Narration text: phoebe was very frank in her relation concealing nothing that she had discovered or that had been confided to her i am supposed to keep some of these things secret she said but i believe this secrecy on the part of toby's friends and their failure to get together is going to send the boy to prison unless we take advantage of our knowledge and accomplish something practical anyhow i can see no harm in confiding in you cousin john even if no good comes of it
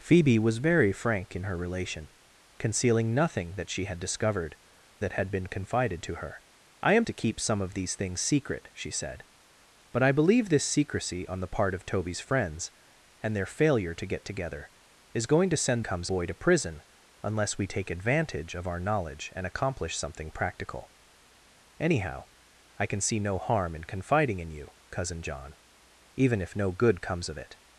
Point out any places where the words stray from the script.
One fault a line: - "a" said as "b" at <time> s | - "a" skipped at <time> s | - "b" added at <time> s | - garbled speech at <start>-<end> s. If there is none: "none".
- "or" skipped at 4.6 s
- "supposed" skipped at 7.0 s
- "the" said as "comes" at 15.8 s